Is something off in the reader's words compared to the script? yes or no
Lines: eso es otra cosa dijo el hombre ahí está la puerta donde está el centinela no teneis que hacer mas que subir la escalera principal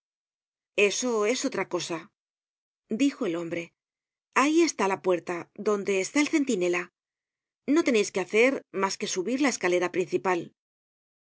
no